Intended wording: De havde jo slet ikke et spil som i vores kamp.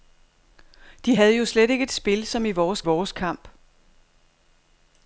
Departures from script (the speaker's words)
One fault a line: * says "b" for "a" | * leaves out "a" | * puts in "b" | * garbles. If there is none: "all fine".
* puts in "vores"